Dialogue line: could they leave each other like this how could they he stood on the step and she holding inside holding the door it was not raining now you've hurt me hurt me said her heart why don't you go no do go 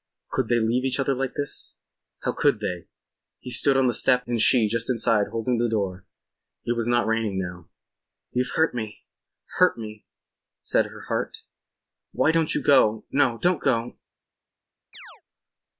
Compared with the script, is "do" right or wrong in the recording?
wrong